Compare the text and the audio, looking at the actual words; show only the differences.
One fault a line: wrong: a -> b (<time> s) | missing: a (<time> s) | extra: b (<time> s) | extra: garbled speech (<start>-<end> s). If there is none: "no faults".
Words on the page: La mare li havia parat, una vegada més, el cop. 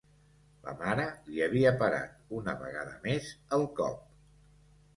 no faults